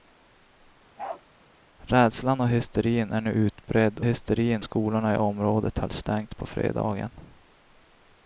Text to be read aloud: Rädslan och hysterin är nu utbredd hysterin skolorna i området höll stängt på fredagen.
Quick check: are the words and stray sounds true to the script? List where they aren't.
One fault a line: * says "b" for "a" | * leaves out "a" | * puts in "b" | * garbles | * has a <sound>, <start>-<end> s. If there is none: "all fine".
* has a bark, 1.0-1.2 s